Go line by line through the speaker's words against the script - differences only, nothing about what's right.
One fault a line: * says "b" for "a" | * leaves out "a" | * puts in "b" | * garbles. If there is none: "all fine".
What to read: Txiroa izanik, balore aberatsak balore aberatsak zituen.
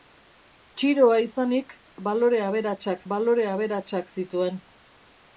all fine